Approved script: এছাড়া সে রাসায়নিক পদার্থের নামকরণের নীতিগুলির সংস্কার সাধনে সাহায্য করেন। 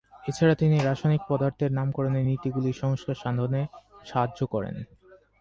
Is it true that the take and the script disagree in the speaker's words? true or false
true